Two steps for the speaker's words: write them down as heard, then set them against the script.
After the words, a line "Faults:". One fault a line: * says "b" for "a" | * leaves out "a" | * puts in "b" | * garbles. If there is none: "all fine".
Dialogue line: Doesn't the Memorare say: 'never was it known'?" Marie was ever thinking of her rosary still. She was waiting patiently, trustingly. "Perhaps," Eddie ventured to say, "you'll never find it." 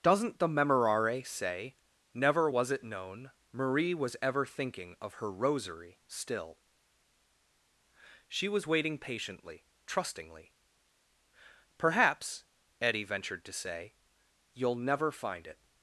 Doesn't the Memorare say: 'never was it known'?" Marie was ever thinking of her rosary still. She was waiting patiently, trustingly. "Perhaps," Eddie ventured to say, "you'll never find it."
Faults:
all fine